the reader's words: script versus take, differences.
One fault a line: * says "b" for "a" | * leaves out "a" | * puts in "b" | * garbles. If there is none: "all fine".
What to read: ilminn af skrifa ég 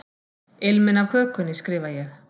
* puts in "kökunni"